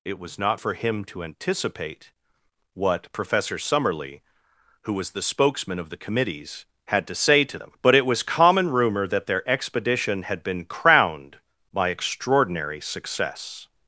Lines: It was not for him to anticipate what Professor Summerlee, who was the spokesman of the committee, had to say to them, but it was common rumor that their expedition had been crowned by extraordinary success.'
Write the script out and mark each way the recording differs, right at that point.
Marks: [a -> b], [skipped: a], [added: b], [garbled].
It was not for him to anticipate what Professor Summerlee, who was the spokesman of the [committee, -> committees] had to say to them, but it was common rumor that their expedition had been crowned by extraordinary success.'